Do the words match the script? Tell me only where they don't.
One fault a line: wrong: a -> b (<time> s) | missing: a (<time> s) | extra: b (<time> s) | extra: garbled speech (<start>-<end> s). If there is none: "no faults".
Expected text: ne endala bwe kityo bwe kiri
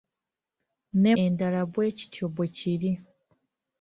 no faults